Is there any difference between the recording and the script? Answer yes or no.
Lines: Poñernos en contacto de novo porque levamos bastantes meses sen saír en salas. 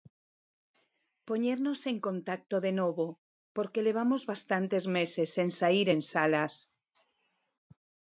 no